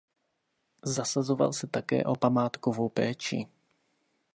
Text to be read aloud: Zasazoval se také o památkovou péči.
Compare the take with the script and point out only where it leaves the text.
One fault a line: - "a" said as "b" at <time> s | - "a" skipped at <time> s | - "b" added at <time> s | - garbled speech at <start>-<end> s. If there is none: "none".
none